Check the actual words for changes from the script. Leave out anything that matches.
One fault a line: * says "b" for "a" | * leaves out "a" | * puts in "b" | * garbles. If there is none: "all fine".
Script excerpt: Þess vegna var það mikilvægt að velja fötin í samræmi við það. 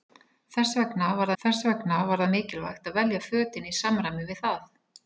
* puts in "þess vegna var"